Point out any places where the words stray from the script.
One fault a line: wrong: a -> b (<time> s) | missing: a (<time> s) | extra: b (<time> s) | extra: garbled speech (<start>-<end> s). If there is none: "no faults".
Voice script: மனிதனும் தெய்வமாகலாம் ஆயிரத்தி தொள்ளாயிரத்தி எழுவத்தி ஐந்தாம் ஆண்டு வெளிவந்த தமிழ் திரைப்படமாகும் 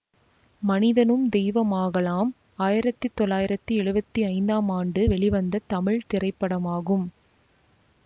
no faults